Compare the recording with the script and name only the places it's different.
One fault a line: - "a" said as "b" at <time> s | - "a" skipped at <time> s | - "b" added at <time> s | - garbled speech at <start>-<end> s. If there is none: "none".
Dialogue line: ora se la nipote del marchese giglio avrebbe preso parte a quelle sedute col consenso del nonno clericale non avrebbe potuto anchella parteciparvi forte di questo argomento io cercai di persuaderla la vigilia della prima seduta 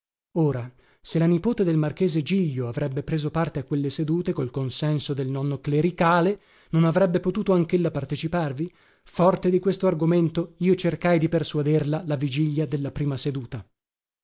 none